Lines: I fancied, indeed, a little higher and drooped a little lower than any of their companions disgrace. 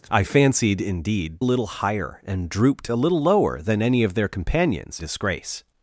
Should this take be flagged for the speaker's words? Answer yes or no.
no